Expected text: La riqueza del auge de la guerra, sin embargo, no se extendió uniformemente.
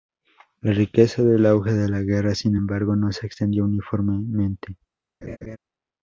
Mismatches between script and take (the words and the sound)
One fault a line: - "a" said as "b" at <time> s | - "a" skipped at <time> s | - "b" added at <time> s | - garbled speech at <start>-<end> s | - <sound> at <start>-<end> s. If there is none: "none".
- laugh at 5.2-5.6 s